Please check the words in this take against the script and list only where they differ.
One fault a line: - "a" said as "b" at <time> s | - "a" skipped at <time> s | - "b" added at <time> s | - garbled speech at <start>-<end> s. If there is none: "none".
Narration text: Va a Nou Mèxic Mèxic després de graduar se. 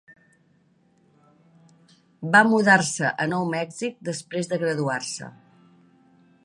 - "mudar se" added at 2.5 s
- "Mèxic" skipped at 4.0 s